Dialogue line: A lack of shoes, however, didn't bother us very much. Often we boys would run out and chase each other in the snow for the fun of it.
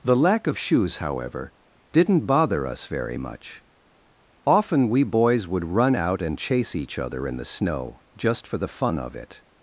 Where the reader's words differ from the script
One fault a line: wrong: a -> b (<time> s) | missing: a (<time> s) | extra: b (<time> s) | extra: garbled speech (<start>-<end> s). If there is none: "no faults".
wrong: A -> The (0.0 s)
extra: just (8.2 s)